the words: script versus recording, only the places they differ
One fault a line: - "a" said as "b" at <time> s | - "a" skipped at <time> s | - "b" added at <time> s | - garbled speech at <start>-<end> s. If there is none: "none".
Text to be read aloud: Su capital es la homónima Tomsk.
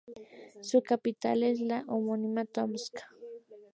none